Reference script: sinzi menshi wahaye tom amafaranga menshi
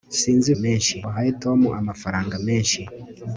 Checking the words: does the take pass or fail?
pass